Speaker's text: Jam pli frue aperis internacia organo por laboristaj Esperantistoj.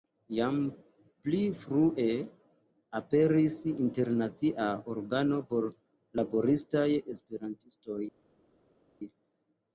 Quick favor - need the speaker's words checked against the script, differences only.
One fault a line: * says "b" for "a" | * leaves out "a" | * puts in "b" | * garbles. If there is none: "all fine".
all fine